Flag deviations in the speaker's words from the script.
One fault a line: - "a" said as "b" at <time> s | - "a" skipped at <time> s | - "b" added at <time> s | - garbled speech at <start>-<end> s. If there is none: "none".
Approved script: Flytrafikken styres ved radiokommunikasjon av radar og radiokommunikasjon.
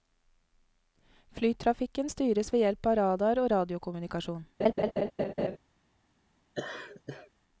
- "radiokommunikasjon" said as "hjelp" at 2.6 s